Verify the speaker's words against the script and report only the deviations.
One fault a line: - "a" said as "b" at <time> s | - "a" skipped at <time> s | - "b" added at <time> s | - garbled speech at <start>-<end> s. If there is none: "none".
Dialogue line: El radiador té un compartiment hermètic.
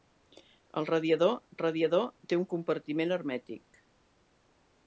- "radiador" added at 1.6 s